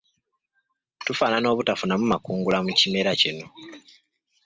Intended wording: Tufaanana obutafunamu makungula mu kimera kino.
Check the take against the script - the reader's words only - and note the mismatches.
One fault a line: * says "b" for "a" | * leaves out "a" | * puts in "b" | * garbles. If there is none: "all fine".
all fine